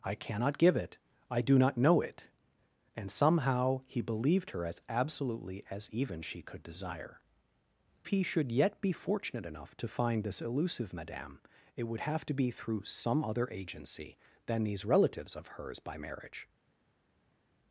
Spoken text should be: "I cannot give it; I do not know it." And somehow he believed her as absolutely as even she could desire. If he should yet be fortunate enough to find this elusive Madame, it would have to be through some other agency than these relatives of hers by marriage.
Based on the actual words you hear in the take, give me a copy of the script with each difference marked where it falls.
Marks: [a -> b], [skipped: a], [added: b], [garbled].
"I cannot give it; I do not know it." And somehow he believed her as absolutely as even she could desire. [skipped: If] he should yet be fortunate enough to find this elusive Madame, it would have to be through some other agency than these relatives of hers by marriage.